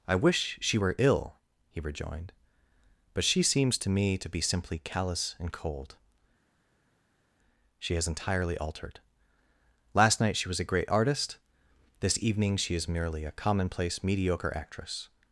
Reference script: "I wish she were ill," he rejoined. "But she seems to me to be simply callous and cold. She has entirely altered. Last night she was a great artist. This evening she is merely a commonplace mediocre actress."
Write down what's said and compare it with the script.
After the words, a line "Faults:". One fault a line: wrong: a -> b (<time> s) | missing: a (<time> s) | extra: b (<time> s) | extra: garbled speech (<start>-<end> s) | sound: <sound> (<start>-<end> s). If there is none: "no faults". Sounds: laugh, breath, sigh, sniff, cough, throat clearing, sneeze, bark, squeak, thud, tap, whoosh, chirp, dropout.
"I wish she were ill," he rejoined. "But she seems to me to be simply callous and cold. She has entirely altered. Last night she was a great artist. This evening she is merely a commonplace mediocre actress."
Faults:
no faults